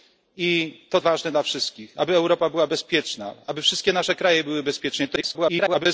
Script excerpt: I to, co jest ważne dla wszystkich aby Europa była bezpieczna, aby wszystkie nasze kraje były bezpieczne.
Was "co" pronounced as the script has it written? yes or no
no